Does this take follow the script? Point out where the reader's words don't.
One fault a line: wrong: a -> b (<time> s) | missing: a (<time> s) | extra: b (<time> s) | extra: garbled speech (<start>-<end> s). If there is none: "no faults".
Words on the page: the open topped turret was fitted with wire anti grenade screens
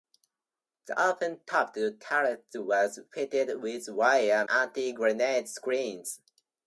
no faults